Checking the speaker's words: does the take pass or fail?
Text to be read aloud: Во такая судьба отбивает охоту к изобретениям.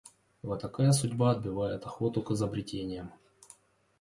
pass